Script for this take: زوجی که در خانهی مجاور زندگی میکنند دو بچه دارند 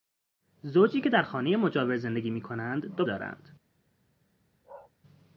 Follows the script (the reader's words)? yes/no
no